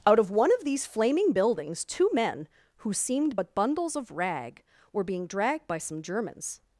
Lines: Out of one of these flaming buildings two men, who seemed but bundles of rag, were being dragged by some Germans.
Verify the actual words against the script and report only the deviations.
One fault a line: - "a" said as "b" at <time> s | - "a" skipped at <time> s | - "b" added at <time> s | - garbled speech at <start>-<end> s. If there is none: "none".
none